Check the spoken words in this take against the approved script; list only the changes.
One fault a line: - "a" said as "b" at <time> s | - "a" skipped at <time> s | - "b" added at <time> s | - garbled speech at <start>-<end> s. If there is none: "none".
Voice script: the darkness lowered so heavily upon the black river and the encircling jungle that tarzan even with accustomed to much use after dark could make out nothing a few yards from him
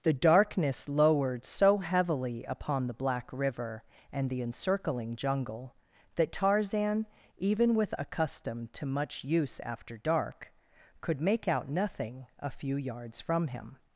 none